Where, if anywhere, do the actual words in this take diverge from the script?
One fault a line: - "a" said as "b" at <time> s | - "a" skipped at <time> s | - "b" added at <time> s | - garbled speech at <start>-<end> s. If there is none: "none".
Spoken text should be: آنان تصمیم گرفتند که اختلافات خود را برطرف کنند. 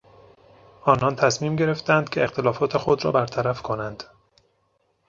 none